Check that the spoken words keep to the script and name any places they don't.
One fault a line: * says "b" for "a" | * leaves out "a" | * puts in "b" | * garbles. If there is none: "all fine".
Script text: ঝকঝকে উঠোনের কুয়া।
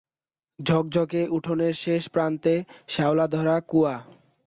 * puts in "শেষ প্রান্তে শ্যাওলা-ধরা"